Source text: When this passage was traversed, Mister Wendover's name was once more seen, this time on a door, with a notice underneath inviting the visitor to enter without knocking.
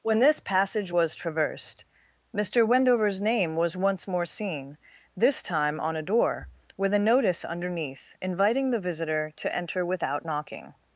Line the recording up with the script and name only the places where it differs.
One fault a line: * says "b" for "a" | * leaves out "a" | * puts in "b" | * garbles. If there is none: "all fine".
all fine